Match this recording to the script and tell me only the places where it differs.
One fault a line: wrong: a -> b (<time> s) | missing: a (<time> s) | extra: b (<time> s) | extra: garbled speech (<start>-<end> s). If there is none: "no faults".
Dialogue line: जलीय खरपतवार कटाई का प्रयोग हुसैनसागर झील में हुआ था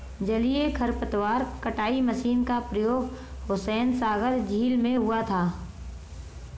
extra: मशीन (2.0 s)